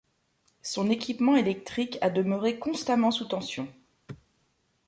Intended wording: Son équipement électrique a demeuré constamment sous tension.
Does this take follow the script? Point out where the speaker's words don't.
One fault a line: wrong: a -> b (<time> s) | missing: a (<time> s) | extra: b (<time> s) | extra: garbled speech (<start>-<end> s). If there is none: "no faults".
no faults